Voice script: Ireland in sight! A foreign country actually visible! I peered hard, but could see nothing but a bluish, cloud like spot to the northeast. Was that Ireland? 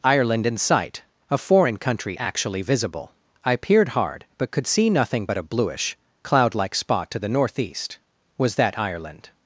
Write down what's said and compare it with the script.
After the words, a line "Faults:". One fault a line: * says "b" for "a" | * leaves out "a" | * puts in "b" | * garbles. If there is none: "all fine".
Ireland in sight! A foreign country actually visible! I peered hard, but could see nothing but a bluish, cloud like spot to the northeast. Was that Ireland?
Faults:
all fine